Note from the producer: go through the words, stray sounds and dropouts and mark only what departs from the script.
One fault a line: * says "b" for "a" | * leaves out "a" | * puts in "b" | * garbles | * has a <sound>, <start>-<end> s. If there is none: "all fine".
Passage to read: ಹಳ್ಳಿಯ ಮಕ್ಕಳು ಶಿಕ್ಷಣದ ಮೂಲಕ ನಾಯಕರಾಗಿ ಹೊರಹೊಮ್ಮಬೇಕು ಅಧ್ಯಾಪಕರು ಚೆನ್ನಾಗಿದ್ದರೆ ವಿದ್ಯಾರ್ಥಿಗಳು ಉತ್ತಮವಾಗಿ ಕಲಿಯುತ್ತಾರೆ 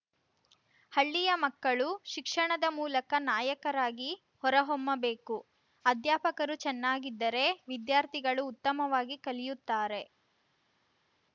all fine